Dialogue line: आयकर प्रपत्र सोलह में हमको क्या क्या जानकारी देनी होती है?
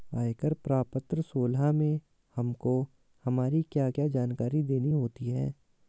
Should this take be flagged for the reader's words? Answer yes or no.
yes